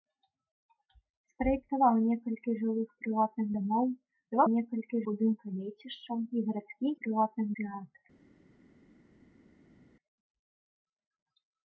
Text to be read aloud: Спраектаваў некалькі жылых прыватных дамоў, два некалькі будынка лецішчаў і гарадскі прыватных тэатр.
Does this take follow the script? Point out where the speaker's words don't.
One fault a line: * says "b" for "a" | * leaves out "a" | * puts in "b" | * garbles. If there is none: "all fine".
all fine